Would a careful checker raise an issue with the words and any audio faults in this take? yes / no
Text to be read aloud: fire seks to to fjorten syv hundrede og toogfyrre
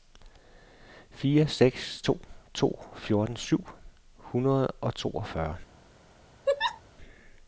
yes